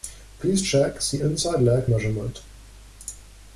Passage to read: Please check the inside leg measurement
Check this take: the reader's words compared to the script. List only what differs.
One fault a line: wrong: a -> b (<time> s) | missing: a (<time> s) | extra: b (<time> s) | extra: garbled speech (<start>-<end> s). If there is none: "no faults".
no faults